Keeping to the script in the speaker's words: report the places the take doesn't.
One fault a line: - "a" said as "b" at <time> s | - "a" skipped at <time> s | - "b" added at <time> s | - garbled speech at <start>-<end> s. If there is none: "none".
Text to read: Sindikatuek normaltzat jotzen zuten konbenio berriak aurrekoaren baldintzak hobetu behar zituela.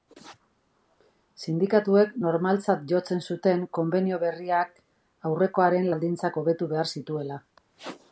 none